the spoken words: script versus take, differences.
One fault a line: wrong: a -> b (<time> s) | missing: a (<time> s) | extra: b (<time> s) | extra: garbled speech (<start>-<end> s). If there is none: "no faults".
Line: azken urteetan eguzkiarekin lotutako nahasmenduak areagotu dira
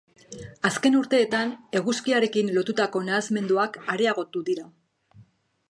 no faults